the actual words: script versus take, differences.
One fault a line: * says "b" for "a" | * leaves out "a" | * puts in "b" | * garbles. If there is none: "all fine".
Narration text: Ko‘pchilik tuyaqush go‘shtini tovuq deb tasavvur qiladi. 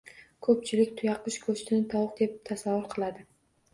all fine